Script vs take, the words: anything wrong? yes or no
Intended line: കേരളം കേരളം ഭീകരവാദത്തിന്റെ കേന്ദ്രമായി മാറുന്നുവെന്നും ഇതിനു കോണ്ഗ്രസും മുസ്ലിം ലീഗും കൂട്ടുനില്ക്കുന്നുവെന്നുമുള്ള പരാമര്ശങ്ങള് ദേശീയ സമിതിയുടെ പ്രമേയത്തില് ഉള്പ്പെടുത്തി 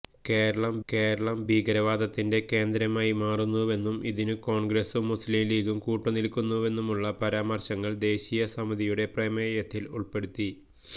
no